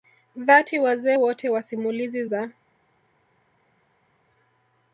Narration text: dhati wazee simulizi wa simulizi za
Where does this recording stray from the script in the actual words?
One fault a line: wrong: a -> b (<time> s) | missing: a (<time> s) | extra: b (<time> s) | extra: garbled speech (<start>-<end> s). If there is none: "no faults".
wrong: simulizi -> wote (1.1 s)